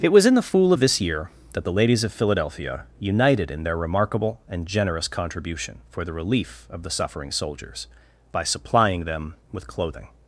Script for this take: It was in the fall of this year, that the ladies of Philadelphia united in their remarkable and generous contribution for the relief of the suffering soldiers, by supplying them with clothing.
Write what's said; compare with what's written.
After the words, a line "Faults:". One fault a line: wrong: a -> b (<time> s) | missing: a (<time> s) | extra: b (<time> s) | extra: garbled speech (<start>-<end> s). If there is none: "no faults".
It was in the fool of this year, that the ladies of Philadelphia united in their remarkable and generous contribution for the relief of the suffering soldiers, by supplying them with clothing.
Faults:
wrong: fall -> fool (0.4 s)